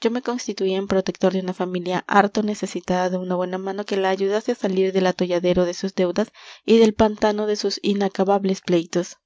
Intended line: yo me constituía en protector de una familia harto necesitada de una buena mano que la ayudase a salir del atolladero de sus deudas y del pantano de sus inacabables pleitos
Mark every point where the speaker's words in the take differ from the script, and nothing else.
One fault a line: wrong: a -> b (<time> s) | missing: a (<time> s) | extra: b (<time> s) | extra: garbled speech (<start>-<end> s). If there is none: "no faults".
no faults